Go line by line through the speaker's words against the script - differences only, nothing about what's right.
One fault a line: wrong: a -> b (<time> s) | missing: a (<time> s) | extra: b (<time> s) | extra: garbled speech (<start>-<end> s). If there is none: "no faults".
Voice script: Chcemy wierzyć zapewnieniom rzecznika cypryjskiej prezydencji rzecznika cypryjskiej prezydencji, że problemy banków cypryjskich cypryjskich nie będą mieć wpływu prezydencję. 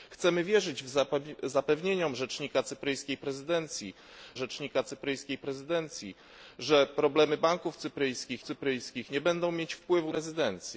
no faults